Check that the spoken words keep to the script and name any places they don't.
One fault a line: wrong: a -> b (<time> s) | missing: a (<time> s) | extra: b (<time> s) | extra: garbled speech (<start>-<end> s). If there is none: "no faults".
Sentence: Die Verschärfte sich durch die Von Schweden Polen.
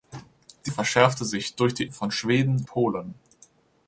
no faults